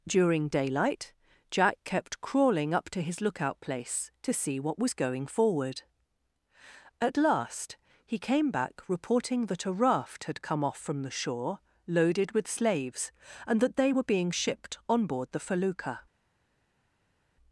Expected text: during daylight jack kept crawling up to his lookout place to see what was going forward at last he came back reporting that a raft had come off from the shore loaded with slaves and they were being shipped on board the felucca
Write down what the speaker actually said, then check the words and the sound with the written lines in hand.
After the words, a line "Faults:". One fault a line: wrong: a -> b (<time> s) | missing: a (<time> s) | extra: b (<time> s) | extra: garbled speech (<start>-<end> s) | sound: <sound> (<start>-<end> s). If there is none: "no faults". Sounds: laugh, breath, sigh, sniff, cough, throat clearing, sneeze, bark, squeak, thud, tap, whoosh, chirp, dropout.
during daylight jack kept crawling up to his lookout place to see what was going forward at last he came back reporting that a raft had come off from the shore loaded with slaves and that they were being shipped on board the felucca
Faults:
extra: that (13.6 s)